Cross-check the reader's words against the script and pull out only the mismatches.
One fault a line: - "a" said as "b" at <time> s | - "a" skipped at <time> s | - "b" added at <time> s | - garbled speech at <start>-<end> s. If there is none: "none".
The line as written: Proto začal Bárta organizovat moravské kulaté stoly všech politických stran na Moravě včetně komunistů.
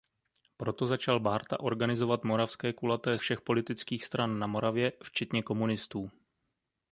- "stoly" skipped at 3.2 s